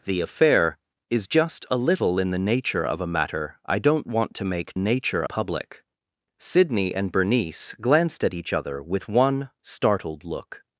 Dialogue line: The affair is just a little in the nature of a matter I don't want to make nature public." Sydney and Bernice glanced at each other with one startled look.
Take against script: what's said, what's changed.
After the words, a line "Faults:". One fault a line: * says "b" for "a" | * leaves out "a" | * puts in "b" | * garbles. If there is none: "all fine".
The affair is just a little in the nature of a matter I don't want to make nature public." Sydney and Bernice glanced at each other with one startled look.
Faults:
all fine